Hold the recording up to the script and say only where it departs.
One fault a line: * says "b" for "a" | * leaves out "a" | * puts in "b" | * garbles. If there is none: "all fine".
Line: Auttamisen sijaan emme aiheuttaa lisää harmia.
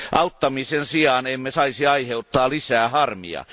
* puts in "saisi"